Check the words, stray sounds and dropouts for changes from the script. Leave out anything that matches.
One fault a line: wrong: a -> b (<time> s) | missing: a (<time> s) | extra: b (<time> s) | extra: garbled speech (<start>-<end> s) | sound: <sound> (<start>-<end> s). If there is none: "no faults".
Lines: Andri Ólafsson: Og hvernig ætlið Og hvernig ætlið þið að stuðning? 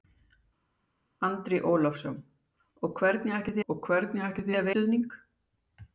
no faults